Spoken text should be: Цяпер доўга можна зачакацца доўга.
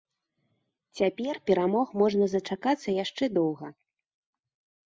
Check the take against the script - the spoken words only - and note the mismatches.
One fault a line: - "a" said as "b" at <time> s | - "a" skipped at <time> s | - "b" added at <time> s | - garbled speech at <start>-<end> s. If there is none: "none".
- "доўга" said as "перамог" at 1.5 s
- "яшчэ" added at 3.0 s